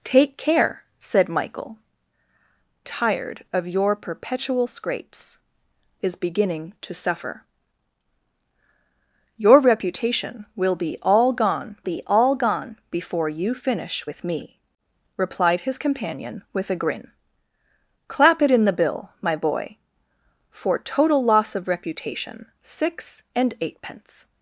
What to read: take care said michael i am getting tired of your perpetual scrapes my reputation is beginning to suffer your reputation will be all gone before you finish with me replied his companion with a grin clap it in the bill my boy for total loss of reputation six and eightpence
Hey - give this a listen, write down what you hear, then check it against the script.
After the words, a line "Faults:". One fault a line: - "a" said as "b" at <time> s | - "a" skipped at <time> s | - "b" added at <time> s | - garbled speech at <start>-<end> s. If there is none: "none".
take care said michael tired of your perpetual scrapes is beginning to suffer your reputation will be all gone be all gone before you finish with me replied his companion with a grin clap it in the bill my boy for total loss of reputation six and eightpence
Faults:
- "i am getting" skipped at 1.8 s
- "my reputation" skipped at 5.4 s
- "be all gone" added at 11.8 s